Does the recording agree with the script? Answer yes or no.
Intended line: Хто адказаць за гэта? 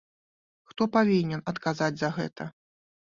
no